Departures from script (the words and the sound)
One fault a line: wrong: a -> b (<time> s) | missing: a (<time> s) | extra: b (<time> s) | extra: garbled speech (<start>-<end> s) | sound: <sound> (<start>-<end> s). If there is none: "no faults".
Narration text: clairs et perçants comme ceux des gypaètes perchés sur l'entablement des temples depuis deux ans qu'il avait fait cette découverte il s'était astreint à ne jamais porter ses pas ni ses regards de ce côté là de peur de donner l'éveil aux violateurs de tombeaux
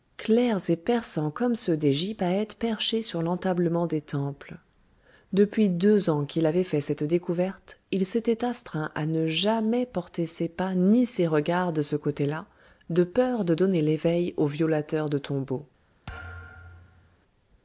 sound: thud (16.1-17.2 s)